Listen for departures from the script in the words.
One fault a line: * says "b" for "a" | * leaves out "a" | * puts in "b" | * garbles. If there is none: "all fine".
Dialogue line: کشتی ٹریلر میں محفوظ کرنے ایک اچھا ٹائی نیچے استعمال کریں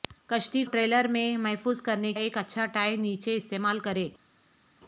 all fine